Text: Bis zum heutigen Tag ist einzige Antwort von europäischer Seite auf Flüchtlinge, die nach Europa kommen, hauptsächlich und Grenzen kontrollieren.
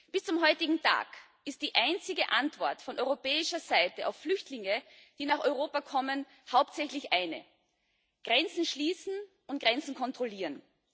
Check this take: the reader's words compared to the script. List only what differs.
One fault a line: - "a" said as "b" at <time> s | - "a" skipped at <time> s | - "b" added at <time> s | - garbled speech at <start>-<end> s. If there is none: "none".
- "die" added at 1.6 s
- "eine Grenzen schließen" added at 7.1 s